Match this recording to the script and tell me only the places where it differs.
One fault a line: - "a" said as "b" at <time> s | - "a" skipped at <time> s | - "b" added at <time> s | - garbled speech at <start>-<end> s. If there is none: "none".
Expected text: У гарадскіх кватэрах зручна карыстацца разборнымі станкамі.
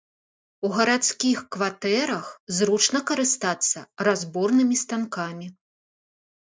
none